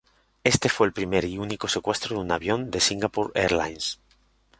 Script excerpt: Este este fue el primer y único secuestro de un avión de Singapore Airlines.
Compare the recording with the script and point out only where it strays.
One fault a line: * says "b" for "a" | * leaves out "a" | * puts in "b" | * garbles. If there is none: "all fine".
* leaves out "este"